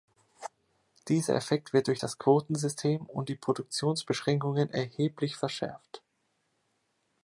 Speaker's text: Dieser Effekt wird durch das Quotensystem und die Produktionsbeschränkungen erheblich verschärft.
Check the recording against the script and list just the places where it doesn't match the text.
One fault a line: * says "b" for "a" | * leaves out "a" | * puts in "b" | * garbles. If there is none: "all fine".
all fine